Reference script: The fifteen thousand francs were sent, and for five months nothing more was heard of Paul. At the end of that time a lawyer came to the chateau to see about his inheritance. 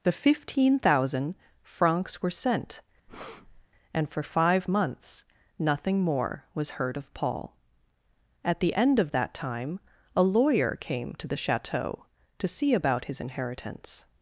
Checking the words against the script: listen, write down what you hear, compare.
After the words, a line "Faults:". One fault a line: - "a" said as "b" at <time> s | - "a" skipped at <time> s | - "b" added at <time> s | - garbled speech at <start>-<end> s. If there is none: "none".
The fifteen thousand francs were sent, and for five months nothing more was heard of Paul. At the end of that time a lawyer came to the chateau to see about his inheritance.
Faults:
none